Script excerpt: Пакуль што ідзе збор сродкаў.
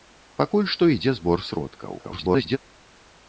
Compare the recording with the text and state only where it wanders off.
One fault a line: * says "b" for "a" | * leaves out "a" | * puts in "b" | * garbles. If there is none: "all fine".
* garbles